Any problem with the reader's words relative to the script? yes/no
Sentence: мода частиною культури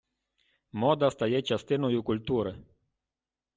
yes